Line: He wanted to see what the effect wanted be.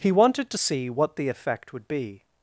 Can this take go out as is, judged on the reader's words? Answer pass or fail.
fail